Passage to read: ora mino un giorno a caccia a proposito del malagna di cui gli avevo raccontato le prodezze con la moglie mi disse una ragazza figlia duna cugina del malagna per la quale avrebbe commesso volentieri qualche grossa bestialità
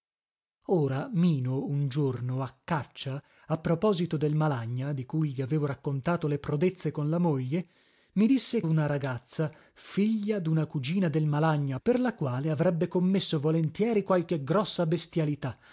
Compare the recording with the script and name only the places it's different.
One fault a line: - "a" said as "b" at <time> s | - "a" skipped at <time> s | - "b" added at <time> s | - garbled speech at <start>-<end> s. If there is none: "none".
none